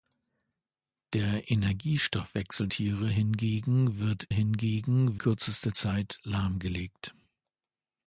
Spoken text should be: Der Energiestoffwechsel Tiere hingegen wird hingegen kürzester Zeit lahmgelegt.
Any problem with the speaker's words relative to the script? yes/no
no